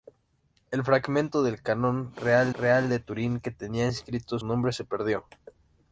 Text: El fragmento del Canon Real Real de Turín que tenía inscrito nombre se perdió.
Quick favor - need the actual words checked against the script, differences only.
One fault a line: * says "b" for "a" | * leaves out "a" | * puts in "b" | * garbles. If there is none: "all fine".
all fine